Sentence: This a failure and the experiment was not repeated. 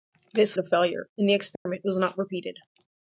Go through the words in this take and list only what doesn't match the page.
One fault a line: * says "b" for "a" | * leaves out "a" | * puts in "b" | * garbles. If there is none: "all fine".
all fine